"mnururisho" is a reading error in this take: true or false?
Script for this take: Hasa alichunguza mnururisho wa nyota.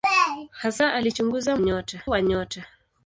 true